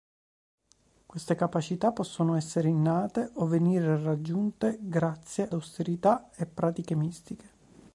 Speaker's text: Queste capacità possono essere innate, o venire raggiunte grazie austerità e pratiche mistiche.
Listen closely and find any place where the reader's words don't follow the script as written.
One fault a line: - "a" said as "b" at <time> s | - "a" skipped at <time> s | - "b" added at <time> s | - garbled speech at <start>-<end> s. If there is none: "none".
none